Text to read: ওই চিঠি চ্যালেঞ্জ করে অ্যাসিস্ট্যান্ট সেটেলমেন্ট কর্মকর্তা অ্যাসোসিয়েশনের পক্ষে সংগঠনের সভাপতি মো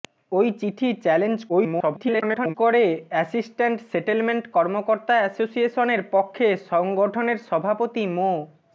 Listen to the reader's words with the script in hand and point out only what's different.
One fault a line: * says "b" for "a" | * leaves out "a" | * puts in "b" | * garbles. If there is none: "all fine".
* garbles